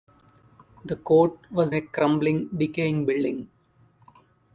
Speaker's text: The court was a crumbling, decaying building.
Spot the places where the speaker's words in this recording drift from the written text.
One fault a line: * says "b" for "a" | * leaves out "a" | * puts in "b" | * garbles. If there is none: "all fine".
all fine